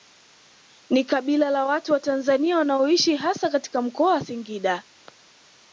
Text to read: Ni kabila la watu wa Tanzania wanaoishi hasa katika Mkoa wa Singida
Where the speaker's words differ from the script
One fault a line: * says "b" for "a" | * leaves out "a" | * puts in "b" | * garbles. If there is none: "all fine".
all fine